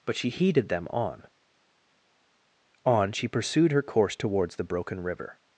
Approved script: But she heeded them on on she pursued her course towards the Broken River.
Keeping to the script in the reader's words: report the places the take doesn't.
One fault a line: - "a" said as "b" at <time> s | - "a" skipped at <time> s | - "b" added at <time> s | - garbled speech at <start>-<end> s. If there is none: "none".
none